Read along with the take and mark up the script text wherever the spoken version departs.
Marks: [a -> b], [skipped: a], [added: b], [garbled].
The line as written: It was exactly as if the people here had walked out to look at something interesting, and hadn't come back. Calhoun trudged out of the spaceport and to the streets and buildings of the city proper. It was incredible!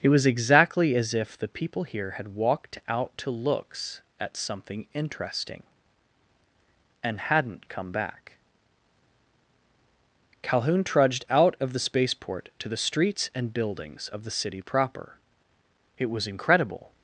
It was exactly as if the people here had walked out to [look -> looks] at something interesting, and hadn't come back. Calhoun trudged out of the spaceport [skipped: and] to the streets and buildings of the city proper. It was incredible!